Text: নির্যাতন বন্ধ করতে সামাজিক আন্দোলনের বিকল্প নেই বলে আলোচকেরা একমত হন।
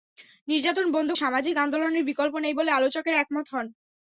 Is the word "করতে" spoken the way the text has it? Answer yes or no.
no